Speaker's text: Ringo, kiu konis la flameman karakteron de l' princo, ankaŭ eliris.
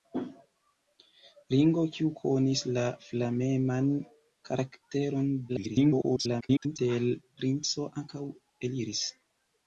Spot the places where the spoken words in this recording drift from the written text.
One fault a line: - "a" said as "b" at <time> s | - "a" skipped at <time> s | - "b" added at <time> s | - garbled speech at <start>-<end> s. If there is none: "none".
- garbled speech at 5.5-6.8 s